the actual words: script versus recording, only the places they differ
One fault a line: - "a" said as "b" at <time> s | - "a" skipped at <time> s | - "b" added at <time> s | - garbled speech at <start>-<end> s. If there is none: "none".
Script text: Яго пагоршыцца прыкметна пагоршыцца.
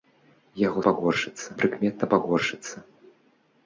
none